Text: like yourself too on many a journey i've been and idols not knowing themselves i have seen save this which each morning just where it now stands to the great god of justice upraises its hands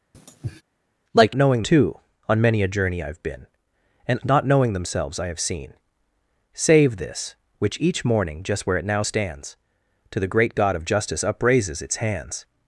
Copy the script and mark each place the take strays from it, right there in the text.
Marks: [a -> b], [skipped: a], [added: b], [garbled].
like [yourself -> knowing] too on many a journey i've been and [skipped: idols] not knowing themselves i have seen save this which each morning just where it now stands to the great god of justice upraises its hands